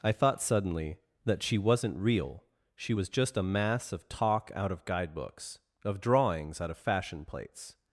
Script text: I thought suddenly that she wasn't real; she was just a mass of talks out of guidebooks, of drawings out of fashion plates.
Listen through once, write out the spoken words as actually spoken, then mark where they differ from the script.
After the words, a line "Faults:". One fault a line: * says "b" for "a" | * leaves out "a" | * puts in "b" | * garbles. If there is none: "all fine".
I thought suddenly that she wasn't real; she was just a mass of talk out of guidebooks, of drawings out of fashion plates.
Faults:
* says "talk" for "talks"